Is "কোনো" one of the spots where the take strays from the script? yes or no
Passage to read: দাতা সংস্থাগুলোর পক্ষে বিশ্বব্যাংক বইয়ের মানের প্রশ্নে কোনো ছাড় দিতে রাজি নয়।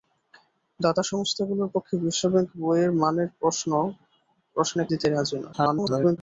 yes